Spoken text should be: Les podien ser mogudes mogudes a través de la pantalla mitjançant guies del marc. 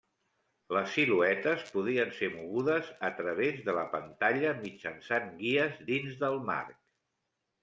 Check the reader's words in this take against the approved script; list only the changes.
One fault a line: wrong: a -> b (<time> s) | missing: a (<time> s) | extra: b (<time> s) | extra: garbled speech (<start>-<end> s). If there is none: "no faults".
extra: siluetes (0.9 s)
missing: mogudes (2.9 s)
extra: dins (5.9 s)